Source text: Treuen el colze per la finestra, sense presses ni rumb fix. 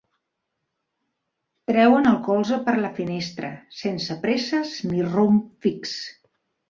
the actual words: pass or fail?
pass